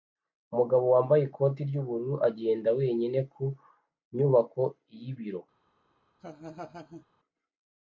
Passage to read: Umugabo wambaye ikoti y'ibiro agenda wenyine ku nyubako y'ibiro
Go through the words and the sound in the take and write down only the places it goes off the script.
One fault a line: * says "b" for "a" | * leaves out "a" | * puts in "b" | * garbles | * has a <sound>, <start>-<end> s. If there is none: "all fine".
* says "ry'ubururu" for "y'ibiro"
* has a laugh, 6.2-7.0 s